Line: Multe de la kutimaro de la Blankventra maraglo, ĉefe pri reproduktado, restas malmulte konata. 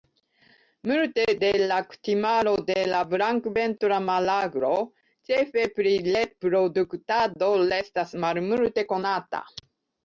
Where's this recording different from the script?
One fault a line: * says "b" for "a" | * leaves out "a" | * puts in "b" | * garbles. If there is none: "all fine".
all fine